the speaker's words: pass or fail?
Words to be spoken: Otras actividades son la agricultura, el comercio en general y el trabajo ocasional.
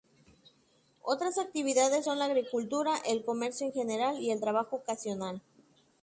pass